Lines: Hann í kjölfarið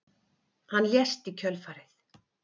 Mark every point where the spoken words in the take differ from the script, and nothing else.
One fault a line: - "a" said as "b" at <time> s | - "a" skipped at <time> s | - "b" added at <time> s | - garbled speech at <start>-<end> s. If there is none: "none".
- "lést" added at 0.9 s